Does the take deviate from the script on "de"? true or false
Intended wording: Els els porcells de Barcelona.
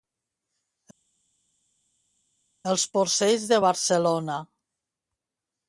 false